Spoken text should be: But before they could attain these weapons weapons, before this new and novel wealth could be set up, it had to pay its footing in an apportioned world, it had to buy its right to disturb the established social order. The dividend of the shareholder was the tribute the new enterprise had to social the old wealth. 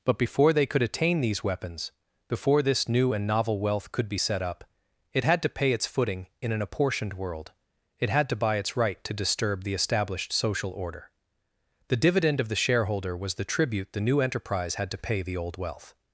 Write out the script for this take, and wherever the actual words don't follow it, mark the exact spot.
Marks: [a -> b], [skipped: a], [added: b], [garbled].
But before they could attain these weapons [skipped: weapons,] before this new and novel wealth could be set up, it had to pay its footing in an apportioned world, it had to buy its right to disturb the established social order. The dividend of the shareholder was the tribute the new enterprise had to [social -> pay] the old wealth.